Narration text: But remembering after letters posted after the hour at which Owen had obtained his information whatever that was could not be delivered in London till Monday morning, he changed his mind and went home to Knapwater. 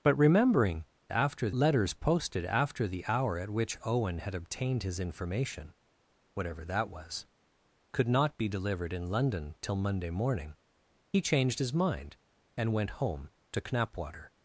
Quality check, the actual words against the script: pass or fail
pass